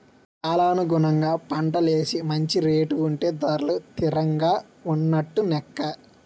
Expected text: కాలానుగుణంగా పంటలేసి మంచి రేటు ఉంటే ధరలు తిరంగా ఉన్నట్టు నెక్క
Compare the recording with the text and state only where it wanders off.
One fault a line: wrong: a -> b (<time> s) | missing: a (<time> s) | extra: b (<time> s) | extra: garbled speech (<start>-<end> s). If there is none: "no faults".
no faults